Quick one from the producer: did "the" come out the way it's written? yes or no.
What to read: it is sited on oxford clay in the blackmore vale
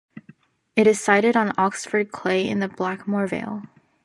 yes